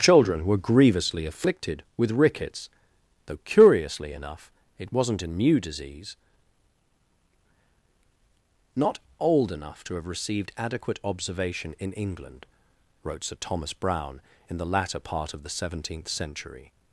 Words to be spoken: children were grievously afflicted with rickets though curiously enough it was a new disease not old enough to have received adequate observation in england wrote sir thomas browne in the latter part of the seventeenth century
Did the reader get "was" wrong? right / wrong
wrong